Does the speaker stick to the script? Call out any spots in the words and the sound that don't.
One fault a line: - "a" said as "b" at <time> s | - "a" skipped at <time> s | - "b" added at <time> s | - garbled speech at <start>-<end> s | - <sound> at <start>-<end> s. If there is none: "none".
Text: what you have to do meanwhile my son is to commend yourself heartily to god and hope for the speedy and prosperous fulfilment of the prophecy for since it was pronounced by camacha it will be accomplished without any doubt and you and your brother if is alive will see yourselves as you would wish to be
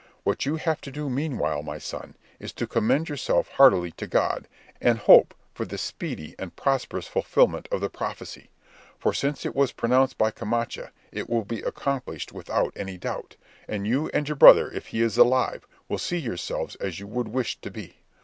- "he" added at 14.9 s